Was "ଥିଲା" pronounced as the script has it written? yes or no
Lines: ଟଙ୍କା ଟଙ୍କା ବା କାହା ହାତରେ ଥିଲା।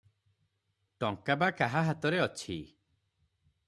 no